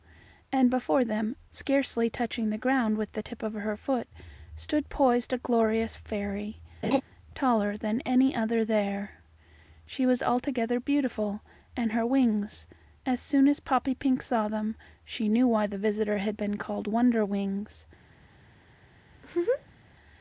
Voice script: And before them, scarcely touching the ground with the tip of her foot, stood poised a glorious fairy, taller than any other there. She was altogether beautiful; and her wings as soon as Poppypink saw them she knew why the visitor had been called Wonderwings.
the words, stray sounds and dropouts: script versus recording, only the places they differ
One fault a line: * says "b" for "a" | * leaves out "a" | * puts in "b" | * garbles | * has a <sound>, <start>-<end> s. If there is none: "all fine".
* has a laugh, 6.8-7.0 s
* has a laugh, 19.1-19.8 s